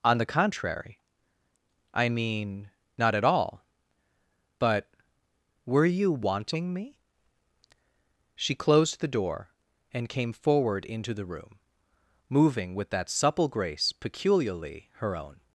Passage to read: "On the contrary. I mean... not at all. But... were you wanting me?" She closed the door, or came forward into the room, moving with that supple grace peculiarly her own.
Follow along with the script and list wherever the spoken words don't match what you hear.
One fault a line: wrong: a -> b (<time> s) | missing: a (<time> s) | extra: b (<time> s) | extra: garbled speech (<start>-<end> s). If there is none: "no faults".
wrong: or -> and (9.9 s)